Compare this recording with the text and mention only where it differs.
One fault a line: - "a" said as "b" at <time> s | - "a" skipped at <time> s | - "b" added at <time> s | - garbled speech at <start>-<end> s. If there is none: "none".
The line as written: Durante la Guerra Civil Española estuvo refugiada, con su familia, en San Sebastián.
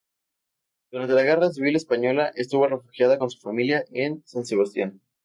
none